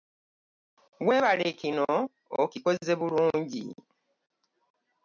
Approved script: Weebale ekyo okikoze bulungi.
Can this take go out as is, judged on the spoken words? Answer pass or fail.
fail